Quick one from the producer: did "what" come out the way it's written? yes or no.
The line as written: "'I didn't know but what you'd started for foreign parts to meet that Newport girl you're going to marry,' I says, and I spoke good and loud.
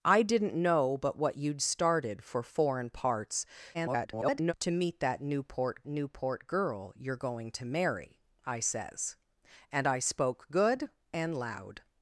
yes